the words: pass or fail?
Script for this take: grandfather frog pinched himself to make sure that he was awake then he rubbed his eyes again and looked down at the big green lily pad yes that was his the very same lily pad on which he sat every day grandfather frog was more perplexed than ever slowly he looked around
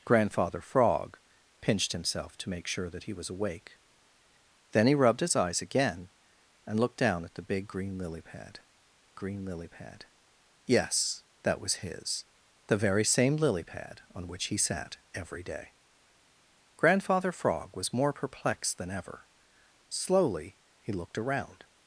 fail